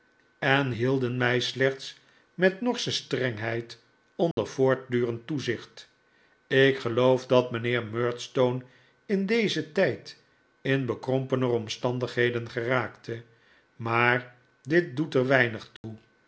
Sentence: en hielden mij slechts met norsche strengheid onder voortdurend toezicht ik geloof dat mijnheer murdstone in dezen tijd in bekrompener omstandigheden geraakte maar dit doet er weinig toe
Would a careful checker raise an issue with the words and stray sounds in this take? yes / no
yes